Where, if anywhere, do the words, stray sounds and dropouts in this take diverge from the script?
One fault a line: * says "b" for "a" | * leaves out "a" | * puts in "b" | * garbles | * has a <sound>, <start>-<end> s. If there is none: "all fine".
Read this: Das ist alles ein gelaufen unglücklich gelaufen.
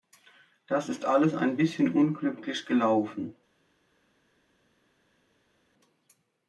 * says "bisschen" for "gelaufen"